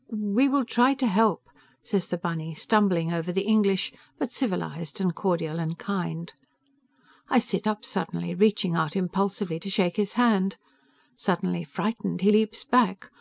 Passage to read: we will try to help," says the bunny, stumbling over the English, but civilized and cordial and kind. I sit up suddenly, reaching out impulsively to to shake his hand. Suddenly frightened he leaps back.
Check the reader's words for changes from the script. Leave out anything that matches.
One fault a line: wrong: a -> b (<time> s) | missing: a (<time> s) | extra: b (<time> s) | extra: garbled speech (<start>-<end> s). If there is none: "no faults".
missing: to (9.7 s)